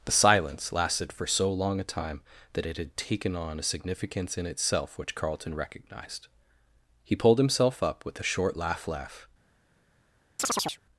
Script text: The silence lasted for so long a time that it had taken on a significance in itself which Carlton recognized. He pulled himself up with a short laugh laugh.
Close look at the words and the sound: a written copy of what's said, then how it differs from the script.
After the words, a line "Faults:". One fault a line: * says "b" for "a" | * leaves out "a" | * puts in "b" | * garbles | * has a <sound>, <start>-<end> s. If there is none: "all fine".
The silence lasted for so long a time that it had taken on a significance in itself which Carlton recognized. He pulled himself up with a short laugh laugh.
Faults:
* has a chirp, 10.4-10.8 s